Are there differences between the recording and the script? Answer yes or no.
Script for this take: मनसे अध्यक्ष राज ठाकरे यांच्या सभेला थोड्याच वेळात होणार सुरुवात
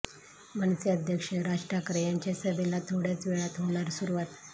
no